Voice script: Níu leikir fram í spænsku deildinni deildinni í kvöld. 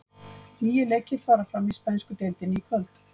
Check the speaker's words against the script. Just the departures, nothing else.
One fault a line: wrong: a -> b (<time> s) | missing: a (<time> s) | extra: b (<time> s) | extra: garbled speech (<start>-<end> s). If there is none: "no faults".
extra: fara (1.3 s)
missing: deildinni (2.6 s)